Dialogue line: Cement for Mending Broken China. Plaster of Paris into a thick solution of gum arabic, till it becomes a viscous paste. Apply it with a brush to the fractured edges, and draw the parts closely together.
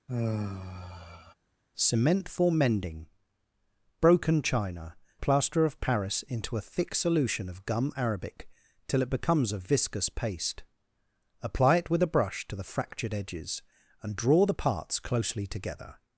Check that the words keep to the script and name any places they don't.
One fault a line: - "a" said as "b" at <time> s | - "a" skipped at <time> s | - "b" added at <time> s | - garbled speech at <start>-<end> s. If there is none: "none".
none